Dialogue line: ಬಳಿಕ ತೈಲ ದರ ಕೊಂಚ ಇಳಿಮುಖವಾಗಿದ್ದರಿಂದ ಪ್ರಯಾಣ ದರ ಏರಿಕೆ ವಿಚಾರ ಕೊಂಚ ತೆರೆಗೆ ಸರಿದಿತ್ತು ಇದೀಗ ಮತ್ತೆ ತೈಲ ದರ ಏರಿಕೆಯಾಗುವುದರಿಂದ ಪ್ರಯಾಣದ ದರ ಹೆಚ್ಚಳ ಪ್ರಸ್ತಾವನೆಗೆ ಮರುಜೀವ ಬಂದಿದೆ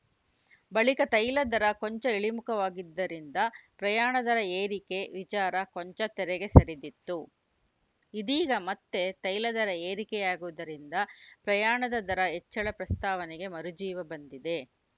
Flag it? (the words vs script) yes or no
no